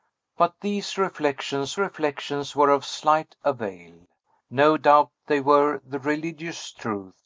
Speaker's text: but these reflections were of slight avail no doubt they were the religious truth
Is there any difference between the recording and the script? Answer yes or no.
yes